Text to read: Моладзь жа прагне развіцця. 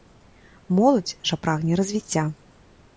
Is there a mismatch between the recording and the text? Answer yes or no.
no